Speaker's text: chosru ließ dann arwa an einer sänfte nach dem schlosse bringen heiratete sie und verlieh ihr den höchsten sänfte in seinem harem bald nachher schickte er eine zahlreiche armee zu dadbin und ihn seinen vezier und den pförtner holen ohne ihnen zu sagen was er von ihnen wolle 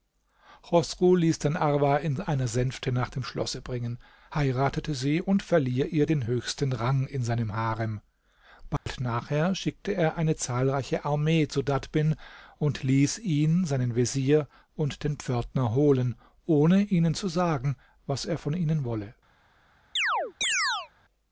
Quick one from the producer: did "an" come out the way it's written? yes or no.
no